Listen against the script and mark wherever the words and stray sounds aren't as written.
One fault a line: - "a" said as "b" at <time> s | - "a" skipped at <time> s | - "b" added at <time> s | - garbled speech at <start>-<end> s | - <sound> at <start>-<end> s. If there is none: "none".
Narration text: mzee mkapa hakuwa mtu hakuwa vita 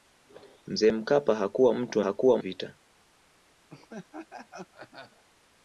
- laugh at 3.7-5.2 s